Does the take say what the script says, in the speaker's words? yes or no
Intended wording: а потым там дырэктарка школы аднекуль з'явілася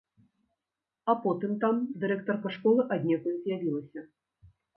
yes